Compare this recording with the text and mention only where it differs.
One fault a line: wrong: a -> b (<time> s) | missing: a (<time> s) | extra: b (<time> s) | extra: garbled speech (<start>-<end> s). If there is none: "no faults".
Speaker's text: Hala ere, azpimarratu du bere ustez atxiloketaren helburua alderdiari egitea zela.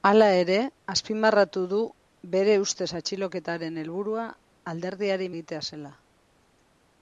no faults